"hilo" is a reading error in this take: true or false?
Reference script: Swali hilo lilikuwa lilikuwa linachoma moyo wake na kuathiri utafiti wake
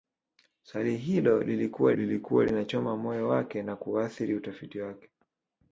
false